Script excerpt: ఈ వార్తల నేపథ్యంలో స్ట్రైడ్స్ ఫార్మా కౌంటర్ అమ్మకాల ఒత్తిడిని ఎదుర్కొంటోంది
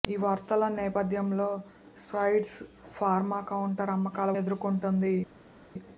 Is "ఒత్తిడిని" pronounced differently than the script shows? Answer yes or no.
yes